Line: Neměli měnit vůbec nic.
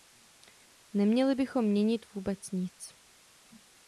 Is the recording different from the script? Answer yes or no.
yes